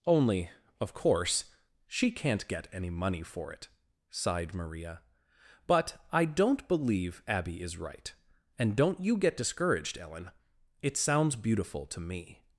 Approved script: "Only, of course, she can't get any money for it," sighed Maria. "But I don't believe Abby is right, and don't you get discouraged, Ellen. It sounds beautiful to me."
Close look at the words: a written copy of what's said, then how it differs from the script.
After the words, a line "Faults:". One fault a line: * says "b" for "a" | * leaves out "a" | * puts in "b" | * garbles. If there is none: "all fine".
"Only, of course, she can't get any money for it," sighed Maria. "But I don't believe Abby is right, and don't you get discouraged, Ellen. It sounds beautiful to me."
Faults:
all fine